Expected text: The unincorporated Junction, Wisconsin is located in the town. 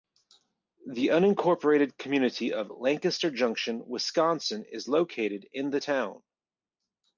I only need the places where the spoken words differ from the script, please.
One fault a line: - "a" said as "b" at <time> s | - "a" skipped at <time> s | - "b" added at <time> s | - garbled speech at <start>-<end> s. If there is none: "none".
- "community of Lancaster" added at 1.9 s